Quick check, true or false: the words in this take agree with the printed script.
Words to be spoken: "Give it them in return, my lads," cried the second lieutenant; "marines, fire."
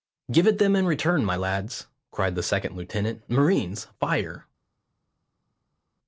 true